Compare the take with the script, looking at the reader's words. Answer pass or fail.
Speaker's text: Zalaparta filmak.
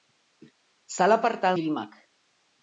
pass